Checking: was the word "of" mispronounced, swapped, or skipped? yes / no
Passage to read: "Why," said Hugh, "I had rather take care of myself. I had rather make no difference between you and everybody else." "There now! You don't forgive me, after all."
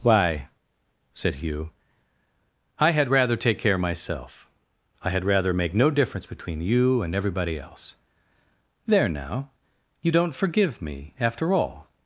yes